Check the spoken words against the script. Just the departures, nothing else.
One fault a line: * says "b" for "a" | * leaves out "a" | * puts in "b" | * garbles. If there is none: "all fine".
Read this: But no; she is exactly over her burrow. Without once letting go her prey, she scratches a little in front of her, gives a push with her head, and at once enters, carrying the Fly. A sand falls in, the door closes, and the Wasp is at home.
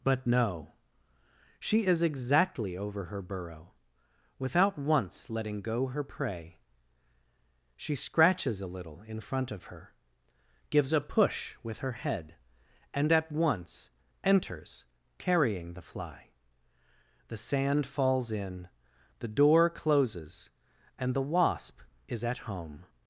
* says "The" for "A"